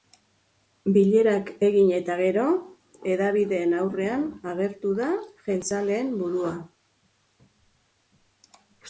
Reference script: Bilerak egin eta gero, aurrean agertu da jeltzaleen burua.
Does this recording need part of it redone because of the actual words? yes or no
yes